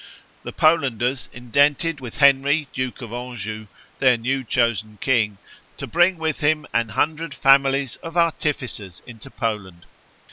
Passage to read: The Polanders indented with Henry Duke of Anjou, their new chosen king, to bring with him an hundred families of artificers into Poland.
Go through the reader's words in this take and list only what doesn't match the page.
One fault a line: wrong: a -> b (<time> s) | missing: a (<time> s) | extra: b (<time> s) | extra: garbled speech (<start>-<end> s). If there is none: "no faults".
no faults